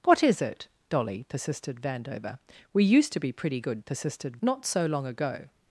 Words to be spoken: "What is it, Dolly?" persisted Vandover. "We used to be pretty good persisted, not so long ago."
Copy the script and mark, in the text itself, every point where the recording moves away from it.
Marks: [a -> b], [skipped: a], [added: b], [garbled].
"What is it, Dolly?" persisted Vandover. "We used to be pretty good persisted, not so long ago."